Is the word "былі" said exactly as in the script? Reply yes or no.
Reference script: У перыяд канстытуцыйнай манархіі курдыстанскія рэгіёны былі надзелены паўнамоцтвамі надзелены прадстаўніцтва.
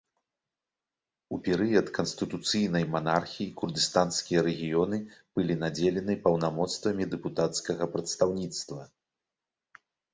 yes